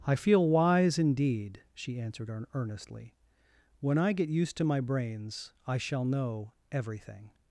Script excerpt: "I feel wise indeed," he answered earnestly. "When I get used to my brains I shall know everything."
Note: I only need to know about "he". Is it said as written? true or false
false